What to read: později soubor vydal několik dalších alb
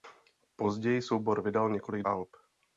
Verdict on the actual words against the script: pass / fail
fail